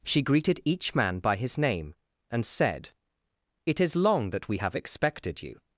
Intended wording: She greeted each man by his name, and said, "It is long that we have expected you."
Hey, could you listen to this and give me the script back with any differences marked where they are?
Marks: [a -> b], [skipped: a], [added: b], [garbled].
She greeted each man by his name, and said, "It is long that we have expected you."